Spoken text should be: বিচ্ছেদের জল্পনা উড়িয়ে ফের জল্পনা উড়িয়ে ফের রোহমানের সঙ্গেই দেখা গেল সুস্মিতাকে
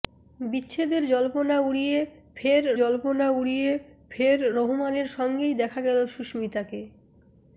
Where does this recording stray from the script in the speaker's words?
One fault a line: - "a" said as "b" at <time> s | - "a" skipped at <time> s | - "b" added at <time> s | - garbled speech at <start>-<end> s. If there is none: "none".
none